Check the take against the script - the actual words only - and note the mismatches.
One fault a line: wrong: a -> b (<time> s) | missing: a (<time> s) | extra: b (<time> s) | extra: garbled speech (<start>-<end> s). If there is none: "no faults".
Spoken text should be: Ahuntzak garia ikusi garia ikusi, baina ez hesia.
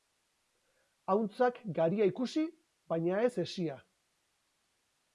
missing: garia ikusi (2.5 s)